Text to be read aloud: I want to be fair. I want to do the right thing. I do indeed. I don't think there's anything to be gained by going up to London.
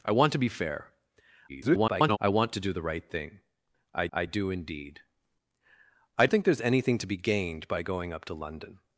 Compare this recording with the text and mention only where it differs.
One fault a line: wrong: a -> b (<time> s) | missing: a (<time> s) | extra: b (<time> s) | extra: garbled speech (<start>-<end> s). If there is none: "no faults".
extra: garbled speech (1.5-2.2 s)
extra: I (4.1 s)
missing: don't (6.3 s)